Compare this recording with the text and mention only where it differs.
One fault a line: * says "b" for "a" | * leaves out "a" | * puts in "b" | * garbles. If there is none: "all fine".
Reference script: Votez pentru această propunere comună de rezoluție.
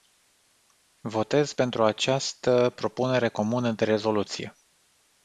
all fine